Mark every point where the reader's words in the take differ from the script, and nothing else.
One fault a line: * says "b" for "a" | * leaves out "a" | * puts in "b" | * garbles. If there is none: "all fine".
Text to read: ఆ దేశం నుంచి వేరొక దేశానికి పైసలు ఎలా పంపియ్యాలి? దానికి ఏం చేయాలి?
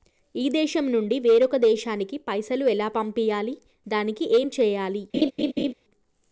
* says "ఈ" for "ఆ"